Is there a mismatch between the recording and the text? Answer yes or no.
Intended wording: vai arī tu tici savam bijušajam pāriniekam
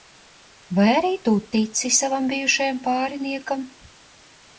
no